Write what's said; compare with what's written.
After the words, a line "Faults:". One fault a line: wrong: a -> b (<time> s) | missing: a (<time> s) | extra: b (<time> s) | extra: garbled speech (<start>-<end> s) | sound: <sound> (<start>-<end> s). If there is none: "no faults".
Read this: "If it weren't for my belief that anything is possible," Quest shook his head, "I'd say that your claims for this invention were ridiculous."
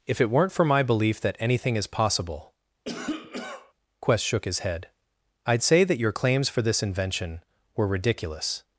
"If it weren't for my belief that anything is possible," Quest shook his head, "I'd say that your claims for this invention were ridiculous."
Faults:
sound: cough (2.9-3.7 s)